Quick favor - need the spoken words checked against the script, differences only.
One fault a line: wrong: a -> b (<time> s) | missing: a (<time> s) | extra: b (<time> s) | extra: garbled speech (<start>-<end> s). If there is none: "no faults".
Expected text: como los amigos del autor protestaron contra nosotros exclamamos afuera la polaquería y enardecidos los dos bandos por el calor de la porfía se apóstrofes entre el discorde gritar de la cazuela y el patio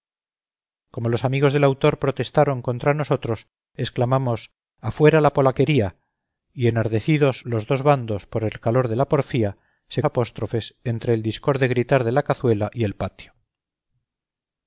no faults